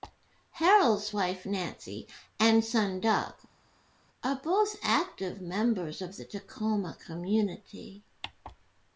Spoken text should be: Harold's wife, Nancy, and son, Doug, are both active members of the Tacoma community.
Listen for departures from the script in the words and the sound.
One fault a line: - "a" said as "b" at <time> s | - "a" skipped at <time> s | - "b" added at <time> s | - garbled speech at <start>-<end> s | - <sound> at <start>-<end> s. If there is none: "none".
none